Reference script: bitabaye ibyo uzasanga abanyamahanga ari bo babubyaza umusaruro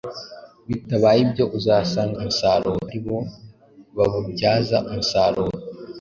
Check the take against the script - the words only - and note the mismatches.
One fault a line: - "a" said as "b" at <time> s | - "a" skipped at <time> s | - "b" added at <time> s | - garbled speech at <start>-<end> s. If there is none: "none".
- "abanyamahanga" said as "umusaruro" at 2.2 s